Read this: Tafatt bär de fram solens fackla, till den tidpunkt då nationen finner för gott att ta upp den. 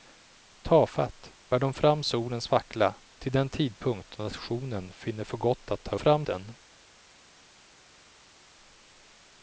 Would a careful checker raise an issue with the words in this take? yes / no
yes